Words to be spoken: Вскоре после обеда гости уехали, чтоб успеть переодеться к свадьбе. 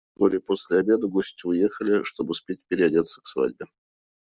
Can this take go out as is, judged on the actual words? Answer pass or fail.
pass